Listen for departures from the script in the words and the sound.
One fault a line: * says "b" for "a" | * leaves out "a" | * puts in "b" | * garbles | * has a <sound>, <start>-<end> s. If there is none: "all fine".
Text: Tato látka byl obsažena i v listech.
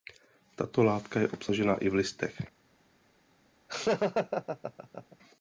* says "je" for "byl"
* has a laugh, 3.7-5.2 s